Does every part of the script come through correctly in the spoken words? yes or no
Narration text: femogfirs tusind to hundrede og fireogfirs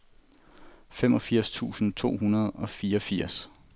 yes